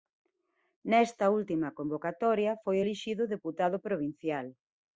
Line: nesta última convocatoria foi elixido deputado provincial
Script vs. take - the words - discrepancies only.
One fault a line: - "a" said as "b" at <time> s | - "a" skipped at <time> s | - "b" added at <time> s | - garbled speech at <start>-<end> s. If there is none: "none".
none